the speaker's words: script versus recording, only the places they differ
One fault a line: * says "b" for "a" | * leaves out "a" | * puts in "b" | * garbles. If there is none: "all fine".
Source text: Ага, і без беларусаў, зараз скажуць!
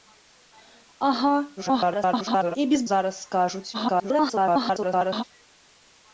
* garbles
* leaves out "беларусаў"
* garbles